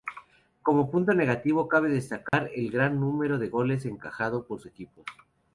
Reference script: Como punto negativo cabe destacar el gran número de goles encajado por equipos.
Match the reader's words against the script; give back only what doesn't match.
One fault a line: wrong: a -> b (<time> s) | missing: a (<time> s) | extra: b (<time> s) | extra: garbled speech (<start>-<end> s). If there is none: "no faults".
no faults